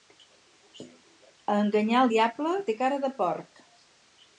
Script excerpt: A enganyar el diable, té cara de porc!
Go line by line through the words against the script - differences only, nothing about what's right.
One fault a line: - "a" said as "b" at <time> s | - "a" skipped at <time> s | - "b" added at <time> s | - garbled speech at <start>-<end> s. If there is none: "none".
none